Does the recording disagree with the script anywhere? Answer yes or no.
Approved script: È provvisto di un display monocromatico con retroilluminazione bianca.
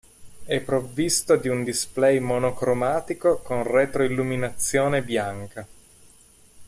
no